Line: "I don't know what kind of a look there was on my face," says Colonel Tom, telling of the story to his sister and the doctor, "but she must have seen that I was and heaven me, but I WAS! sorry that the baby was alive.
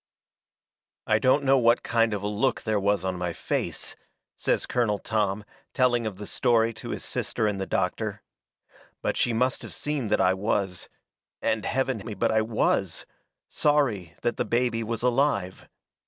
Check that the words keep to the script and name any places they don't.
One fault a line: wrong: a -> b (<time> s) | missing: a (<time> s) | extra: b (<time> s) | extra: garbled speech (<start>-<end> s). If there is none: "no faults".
no faults